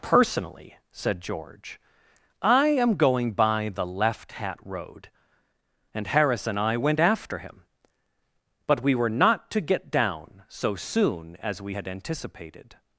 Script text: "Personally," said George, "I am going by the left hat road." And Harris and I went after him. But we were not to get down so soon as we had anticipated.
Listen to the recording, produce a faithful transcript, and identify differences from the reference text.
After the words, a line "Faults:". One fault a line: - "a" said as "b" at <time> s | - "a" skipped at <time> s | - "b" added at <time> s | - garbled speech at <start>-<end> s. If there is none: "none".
"Personally," said George, "I am going by the left hat road." And Harris and I went after him. But we were not to get down so soon as we had anticipated.
Faults:
none